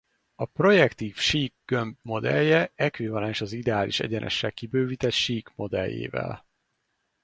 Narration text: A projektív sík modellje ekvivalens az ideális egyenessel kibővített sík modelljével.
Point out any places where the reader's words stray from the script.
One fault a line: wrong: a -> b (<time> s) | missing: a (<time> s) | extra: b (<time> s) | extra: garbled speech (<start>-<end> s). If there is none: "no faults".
extra: gömb (1.6 s)